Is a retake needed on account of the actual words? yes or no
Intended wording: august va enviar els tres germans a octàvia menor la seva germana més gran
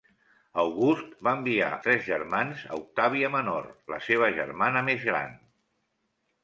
yes